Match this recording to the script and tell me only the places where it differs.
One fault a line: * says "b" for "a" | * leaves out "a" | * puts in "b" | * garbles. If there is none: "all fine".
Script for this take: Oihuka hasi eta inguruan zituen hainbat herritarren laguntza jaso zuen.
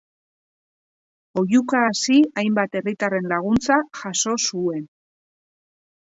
* leaves out "eta inguruan zituen"